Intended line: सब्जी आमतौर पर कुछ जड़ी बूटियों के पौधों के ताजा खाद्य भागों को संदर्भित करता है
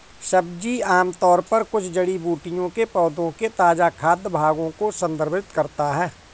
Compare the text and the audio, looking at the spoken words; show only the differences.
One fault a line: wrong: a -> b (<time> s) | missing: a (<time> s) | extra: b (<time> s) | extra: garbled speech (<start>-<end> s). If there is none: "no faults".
no faults